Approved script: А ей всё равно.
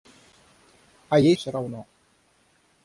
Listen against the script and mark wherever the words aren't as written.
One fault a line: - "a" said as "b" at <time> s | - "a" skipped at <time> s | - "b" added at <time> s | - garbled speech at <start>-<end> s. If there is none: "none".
none